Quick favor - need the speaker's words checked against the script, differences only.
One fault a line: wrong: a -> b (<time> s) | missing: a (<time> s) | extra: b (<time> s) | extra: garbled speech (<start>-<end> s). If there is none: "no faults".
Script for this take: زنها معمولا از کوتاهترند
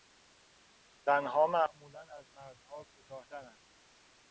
extra: مردها (2.3 s)